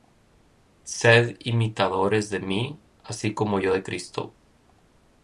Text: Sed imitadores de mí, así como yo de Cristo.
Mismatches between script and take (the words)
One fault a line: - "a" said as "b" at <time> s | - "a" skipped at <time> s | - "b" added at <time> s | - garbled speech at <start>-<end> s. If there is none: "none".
none